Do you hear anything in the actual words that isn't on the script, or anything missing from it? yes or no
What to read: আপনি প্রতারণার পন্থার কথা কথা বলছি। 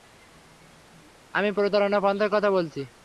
yes